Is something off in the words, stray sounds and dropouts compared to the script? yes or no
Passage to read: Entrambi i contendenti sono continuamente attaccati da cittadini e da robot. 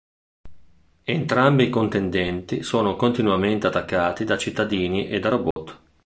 yes